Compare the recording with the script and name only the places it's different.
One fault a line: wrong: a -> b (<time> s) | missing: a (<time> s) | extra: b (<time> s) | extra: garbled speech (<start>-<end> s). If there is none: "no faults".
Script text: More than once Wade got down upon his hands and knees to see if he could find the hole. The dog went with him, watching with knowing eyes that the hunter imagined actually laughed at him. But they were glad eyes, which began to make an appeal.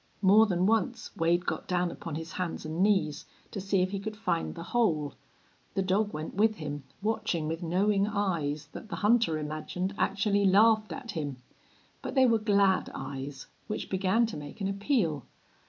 no faults